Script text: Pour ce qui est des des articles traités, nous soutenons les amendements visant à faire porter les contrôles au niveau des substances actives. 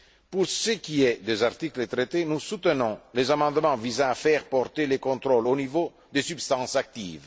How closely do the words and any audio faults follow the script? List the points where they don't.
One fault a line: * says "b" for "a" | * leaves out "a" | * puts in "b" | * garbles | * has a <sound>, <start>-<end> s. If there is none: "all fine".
* leaves out "des"